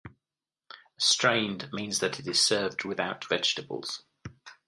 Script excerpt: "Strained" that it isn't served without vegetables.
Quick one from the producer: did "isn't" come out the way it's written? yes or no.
no